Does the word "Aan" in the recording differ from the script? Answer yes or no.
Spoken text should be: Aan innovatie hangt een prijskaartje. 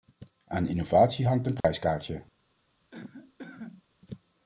no